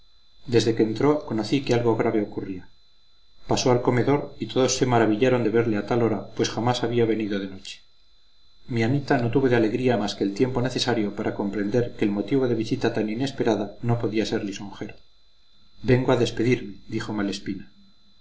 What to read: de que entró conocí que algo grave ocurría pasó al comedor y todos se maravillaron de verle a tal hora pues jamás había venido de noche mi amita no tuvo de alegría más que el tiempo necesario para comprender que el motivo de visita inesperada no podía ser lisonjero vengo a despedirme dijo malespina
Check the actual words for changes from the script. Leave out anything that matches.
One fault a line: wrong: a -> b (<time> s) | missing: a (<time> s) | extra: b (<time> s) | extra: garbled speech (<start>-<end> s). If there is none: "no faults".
wrong: de -> desde (0.5 s)
extra: tan (12.9 s)